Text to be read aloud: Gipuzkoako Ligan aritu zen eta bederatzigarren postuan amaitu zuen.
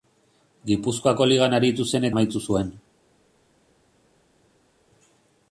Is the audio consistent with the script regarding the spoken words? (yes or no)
no